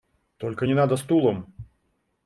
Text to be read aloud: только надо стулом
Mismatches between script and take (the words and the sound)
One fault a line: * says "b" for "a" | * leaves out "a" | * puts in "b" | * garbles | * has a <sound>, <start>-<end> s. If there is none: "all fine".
* puts in "не"